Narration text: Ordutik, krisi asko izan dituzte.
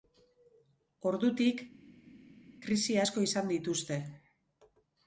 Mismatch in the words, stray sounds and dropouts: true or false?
false